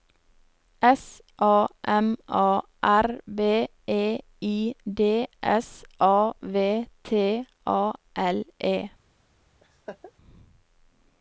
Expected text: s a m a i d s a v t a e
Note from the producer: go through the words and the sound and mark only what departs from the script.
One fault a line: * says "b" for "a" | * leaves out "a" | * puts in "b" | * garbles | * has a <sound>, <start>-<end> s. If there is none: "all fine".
* puts in "r b e"
* puts in "l"
* has a laugh, 9.6-10.1 s